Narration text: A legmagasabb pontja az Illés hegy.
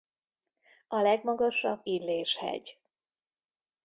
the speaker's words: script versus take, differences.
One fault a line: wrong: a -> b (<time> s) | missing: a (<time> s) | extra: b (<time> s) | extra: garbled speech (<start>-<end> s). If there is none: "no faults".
missing: pontja az (1.8 s)